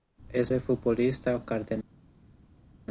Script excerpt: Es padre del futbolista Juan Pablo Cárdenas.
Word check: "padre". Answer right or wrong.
wrong